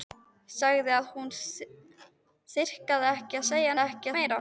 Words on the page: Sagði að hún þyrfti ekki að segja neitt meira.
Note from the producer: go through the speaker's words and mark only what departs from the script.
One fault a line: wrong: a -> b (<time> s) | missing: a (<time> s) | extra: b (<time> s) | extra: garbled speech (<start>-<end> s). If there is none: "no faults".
wrong: neitt -> ekki (3.8 s)